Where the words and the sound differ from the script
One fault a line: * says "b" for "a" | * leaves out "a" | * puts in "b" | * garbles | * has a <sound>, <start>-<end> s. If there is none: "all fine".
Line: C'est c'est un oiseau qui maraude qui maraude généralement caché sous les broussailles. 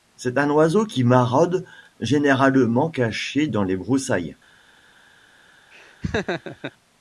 * leaves out "c'est"
* leaves out "qui maraude"
* says "dans" for "sous"
* has a laugh, 5.7-6.7 s